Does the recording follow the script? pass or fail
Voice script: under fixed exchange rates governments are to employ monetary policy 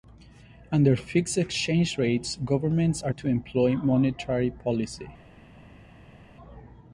pass